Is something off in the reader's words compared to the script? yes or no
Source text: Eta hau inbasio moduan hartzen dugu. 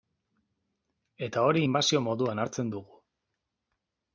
yes